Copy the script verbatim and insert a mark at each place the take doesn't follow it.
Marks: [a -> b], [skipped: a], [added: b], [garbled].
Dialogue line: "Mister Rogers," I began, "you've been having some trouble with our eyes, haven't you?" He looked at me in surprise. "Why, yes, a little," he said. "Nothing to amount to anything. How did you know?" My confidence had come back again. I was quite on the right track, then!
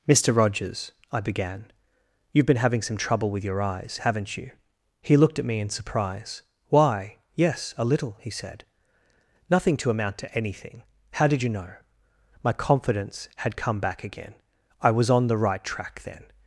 "Mister Rogers," I began, "you've been having some trouble with [our -> your] eyes, haven't you?" He looked at me in surprise. "Why, yes, a little," he said. "Nothing to amount to anything. How did you know?" My confidence had come back again. I was [skipped: quite] on the right track, then!